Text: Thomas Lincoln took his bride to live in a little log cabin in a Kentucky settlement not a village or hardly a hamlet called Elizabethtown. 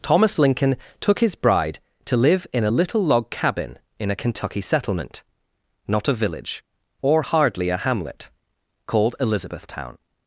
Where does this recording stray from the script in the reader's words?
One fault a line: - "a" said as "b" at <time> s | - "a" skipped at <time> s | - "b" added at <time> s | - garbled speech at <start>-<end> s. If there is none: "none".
none